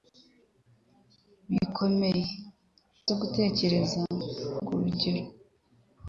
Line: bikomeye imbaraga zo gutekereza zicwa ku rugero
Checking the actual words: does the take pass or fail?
fail